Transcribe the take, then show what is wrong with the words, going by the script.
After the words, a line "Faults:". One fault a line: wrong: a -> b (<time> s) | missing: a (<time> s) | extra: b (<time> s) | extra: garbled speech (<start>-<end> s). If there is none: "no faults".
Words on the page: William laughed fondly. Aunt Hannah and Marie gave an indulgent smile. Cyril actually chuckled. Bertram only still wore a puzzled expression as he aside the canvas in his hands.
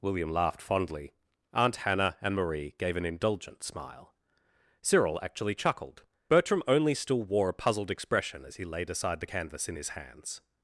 William laughed fondly. Aunt Hannah and Marie gave an indulgent smile. Cyril actually chuckled. Bertram only still wore a puzzled expression as he laid aside the canvas in his hands.
Faults:
extra: laid (8.6 s)